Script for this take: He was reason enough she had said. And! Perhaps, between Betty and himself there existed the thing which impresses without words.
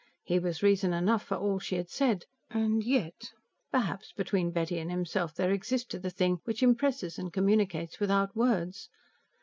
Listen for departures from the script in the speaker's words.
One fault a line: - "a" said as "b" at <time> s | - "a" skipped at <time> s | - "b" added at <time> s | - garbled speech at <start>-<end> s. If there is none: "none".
- "for all" added at 1.2 s
- "yet" added at 2.8 s
- "and communicates" added at 7.2 s